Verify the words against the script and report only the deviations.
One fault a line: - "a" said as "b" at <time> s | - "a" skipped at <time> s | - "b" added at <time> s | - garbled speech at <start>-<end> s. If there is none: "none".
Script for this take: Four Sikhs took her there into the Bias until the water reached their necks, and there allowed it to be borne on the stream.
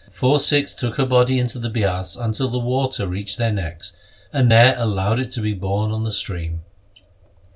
- "there" said as "body" at 1.1 s